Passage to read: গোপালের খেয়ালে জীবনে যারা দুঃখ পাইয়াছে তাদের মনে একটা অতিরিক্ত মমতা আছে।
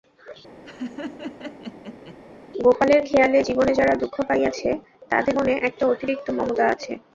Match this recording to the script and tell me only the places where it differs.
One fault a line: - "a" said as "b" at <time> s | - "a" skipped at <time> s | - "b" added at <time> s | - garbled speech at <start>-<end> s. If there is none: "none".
none